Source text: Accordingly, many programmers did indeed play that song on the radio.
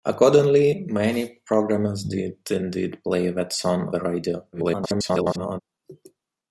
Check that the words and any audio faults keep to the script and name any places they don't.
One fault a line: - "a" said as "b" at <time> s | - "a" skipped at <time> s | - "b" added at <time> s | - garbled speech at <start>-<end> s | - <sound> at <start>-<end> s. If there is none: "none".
- "on" skipped at 3.9 s
- garbled speech at 4.5-5.6 s